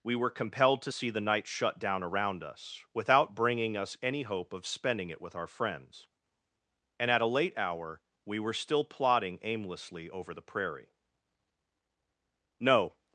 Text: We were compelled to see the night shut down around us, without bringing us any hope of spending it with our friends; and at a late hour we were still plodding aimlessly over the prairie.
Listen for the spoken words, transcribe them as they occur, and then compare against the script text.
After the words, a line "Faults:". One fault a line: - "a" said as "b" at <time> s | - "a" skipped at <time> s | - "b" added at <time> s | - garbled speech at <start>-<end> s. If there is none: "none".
We were compelled to see the night shut down around us, without bringing us any hope of spending it with our friends; and at a late hour we were still plodding aimlessly over the prairie. "No
Faults:
- "No" added at 12.6 s